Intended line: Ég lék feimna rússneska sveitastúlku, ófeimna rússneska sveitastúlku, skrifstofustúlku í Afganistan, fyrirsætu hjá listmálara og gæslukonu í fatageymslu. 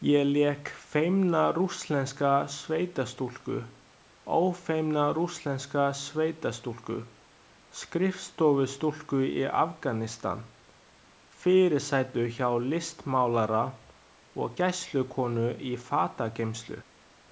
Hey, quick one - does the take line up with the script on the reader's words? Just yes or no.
yes